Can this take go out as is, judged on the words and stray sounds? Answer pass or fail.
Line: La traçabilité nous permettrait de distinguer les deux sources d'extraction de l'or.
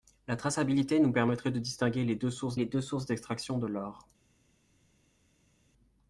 fail